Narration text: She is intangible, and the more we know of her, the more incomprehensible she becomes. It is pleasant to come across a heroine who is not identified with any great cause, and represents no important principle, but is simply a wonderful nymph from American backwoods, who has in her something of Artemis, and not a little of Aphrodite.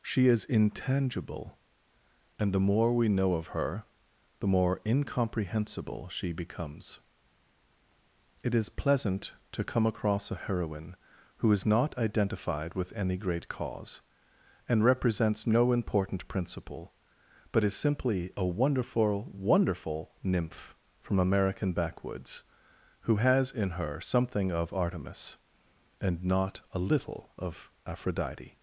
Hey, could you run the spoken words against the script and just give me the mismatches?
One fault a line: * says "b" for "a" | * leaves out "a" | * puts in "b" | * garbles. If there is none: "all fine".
* puts in "wonderful"